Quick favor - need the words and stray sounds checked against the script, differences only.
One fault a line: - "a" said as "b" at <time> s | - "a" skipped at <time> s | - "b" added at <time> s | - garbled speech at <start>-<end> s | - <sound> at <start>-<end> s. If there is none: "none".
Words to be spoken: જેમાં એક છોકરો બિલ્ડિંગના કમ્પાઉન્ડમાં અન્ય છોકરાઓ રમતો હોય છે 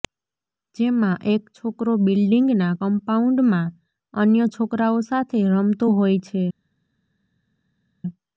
- "સાથે" added at 5.1 s